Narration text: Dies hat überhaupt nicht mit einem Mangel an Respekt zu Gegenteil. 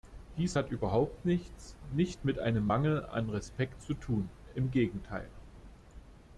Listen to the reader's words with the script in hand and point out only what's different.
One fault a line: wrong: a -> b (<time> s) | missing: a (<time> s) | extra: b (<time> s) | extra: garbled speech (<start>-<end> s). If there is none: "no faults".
extra: nichts (1.2 s)
extra: tun im (3.9 s)